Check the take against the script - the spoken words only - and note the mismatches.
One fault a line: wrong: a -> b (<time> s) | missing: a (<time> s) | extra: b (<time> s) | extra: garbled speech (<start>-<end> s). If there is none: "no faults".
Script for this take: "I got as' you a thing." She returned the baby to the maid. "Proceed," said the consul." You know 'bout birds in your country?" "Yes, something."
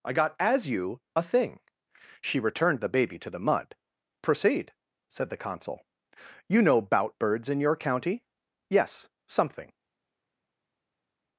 wrong: maid -> mud (3.4 s)
wrong: country -> county (7.8 s)